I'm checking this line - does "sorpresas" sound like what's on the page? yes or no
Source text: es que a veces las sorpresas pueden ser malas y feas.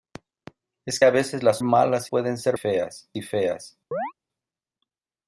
no